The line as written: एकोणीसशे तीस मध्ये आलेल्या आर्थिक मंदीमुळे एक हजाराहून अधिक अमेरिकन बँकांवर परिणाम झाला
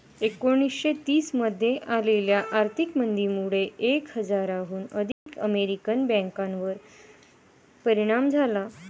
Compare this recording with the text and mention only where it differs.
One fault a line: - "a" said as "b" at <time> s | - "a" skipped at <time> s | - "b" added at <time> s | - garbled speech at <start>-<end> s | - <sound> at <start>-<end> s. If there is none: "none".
- dropout at 5.1-5.3 s